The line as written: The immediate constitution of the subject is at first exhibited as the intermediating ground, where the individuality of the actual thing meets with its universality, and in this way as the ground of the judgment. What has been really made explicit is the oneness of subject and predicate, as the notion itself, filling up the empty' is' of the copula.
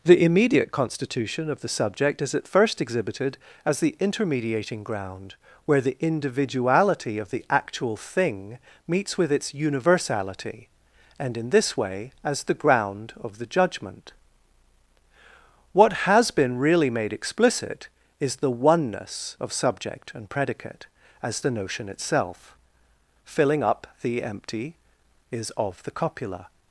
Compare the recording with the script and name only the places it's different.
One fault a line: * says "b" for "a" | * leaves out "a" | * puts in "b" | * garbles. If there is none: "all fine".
all fine